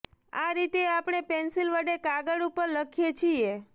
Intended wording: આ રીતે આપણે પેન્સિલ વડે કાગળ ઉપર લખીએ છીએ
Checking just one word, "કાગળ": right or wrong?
right